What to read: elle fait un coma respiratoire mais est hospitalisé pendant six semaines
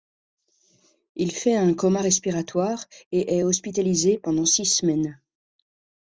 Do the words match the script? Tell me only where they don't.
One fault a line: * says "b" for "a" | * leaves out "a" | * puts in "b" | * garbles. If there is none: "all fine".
* says "il" for "elle"
* says "et" for "mais"